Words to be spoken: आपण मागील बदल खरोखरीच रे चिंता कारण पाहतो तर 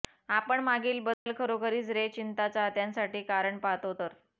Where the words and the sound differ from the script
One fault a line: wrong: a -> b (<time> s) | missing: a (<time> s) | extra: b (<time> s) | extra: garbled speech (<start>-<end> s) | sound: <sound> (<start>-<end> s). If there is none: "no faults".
sound: dropout (1.1-1.3 s)
extra: चाहत्यांसाठी (2.5 s)